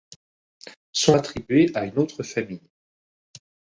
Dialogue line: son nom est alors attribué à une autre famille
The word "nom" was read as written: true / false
false